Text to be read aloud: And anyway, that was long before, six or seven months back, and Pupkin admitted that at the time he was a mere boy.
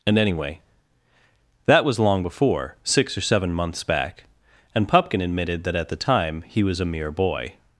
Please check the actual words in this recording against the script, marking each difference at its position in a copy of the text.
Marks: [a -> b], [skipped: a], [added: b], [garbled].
And anyway, that was long before, six or seven months back, and Pupkin admitted that at the time he was a mere boy.